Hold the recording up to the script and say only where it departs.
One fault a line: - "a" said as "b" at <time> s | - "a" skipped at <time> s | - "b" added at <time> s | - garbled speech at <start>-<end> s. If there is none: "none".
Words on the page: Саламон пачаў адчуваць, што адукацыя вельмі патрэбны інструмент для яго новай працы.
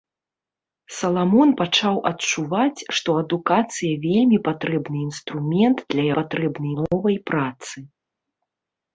- "яго" said as "патрэбны" at 6.2 s